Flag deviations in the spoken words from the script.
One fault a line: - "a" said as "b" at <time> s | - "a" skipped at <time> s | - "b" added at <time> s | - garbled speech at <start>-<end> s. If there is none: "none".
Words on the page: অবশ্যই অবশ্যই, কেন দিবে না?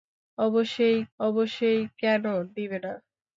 none